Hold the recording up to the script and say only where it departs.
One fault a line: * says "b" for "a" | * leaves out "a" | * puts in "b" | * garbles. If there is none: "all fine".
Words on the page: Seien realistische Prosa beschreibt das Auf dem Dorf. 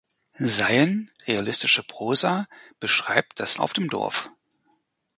all fine